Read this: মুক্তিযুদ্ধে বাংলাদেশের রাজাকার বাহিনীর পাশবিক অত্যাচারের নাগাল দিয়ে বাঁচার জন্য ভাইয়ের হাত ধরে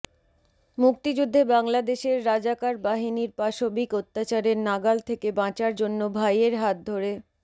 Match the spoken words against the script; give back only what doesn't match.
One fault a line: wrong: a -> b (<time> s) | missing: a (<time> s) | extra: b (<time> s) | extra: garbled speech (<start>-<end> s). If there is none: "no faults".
wrong: দিয়ে -> থেকে (5.1 s)